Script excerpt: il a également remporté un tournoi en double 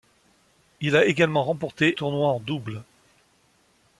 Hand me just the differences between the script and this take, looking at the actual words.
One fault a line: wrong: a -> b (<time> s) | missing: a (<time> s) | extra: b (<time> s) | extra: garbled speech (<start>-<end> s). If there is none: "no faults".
missing: un (1.9 s)